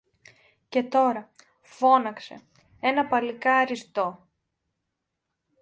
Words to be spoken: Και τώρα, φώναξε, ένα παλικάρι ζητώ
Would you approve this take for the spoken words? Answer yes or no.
yes